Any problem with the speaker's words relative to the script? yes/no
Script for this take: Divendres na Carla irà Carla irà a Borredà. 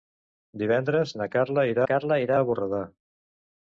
no